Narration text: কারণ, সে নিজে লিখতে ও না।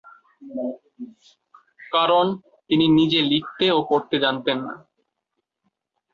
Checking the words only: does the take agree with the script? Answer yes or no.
no